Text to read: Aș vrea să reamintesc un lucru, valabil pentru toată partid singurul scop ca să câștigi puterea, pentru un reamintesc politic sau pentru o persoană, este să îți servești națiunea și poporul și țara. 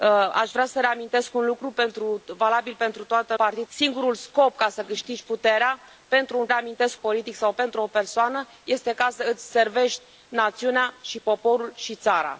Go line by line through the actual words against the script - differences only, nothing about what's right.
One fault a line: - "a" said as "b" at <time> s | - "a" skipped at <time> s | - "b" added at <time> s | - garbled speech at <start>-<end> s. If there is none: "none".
none